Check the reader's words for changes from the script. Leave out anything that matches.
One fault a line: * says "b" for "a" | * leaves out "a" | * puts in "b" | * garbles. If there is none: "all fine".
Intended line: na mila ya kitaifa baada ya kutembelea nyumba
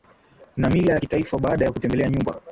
all fine